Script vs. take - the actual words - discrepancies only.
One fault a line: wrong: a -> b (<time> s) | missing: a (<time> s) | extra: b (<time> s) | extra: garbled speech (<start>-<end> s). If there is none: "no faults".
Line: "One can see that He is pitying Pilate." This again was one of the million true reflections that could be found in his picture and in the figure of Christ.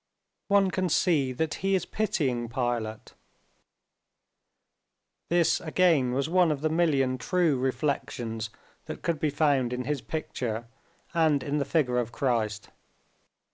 no faults